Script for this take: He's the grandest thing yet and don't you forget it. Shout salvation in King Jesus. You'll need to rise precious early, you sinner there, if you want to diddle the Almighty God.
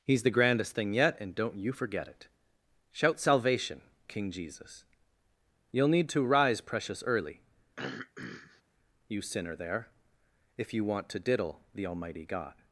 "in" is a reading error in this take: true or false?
true